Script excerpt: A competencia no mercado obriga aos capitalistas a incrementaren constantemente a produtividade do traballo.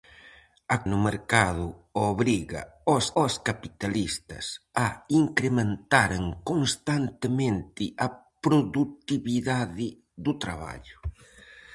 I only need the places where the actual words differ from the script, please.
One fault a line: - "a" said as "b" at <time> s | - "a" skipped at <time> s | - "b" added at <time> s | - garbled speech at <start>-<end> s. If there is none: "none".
- "competencia" skipped at 0.8 s
- "aos" added at 3.2 s